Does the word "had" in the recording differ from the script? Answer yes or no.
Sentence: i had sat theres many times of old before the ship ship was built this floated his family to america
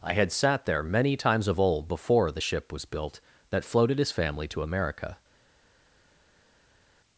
no